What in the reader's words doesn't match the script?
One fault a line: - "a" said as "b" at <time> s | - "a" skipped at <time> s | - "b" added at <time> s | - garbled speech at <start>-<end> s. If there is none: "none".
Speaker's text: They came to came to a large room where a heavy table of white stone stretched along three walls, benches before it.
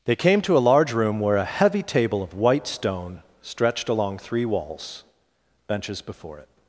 - "came to" skipped at 0.6 s